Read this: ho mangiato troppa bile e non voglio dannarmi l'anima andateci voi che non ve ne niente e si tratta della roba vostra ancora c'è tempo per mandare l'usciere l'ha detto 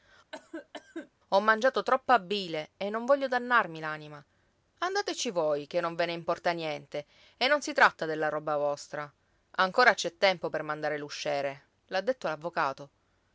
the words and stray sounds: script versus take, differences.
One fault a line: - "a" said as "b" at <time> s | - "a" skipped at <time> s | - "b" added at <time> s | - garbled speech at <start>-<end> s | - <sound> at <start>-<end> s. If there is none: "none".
- cough at 0.3-1.1 s
- "importa" added at 6.1 s
- "non" added at 7.5 s